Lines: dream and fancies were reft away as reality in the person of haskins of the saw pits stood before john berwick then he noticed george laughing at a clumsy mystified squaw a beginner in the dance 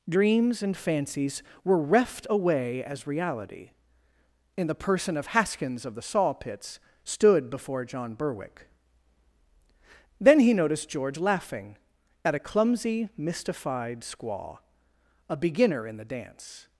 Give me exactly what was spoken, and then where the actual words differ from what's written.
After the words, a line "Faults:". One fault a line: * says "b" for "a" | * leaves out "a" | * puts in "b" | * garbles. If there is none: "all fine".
dreams and fancies were reft away as reality in the person of haskins of the saw pits stood before john berwick then he noticed george laughing at a clumsy mystified squaw a beginner in the dance
Faults:
* says "dreams" for "dream"